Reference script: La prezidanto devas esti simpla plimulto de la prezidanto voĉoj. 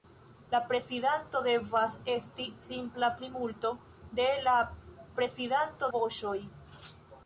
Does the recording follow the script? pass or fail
pass